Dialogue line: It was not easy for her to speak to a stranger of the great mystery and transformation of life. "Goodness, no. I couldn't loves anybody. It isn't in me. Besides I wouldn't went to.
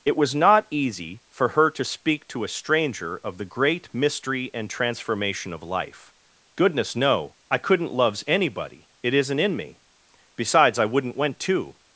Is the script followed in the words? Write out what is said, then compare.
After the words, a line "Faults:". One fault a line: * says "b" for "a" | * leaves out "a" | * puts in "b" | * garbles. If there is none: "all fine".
It was not easy for her to speak to a stranger of the great mystery and transformation of life. "Goodness, no. I couldn't loves anybody. It isn't in me. Besides I wouldn't went to.
Faults:
all fine